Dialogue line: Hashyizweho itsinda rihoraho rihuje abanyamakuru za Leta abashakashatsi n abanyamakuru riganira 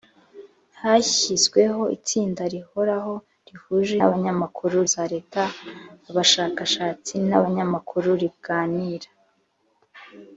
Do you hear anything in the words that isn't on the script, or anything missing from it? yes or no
no